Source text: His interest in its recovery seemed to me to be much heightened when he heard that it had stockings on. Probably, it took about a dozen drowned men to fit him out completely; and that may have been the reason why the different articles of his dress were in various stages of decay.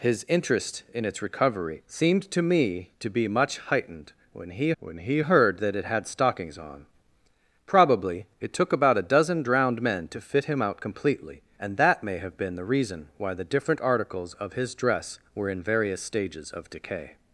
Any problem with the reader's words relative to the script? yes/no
yes